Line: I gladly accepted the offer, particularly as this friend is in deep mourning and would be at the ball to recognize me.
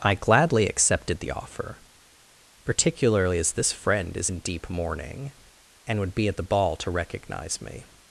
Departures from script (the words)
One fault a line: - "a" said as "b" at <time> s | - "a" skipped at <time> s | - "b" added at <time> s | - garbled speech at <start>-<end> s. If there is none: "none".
none